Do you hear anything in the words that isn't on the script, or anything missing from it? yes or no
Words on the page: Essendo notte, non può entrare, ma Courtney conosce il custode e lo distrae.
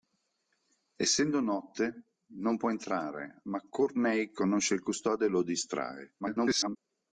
yes